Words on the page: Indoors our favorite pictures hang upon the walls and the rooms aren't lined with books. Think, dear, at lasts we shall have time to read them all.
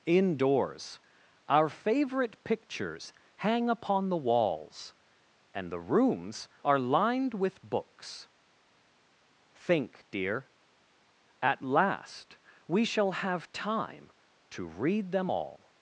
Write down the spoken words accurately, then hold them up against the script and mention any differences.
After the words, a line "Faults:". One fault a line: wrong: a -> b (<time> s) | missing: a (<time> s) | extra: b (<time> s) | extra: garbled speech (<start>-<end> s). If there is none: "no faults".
Indoors our favorite pictures hang upon the walls and the rooms are lined with books. Think, dear, at last we shall have time to read them all.
Faults:
wrong: aren't -> are (6.6 s)
wrong: lasts -> last (11.6 s)